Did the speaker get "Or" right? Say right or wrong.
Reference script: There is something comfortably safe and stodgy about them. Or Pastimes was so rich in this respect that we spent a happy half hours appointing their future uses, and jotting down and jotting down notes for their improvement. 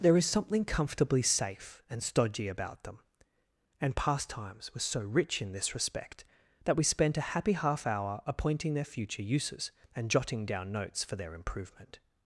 wrong